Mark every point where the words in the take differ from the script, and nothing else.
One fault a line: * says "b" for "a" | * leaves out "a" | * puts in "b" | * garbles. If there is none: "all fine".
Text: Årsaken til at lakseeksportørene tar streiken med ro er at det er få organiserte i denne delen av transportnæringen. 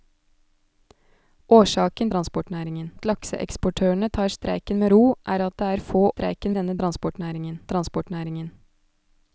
* says "transportnæringen" for "til"
* says "streiken" for "organiserte"
* says "transportnæringen" for "delen"